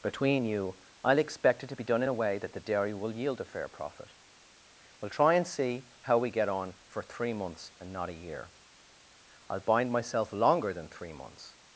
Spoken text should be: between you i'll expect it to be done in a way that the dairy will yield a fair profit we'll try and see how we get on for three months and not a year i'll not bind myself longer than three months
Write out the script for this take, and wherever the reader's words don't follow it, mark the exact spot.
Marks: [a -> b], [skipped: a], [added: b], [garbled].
between you i'll expect it to be done in a way that the dairy will yield a fair profit we'll try and see how we get on for three months and not a year i'll [skipped: not] bind myself longer than three months